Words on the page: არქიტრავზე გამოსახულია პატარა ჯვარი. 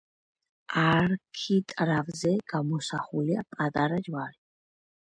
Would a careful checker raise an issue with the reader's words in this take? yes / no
no